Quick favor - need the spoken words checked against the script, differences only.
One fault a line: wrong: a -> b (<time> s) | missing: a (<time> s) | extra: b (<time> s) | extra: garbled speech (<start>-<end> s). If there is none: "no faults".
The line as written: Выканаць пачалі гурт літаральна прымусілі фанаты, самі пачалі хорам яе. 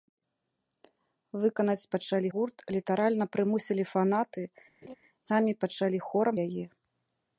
no faults